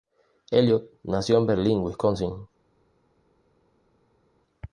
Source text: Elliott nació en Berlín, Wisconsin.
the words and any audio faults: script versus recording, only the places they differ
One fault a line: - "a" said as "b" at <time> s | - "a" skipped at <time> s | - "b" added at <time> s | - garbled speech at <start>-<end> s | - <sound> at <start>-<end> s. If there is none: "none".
none